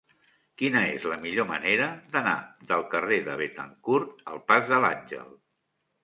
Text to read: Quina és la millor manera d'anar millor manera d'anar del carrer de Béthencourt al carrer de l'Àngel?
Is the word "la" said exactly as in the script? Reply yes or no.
yes